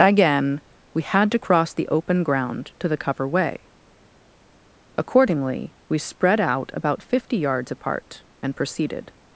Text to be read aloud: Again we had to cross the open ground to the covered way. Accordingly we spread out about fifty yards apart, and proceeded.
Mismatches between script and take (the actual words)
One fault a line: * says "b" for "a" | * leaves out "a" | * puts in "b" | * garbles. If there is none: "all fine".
* says "cover" for "covered"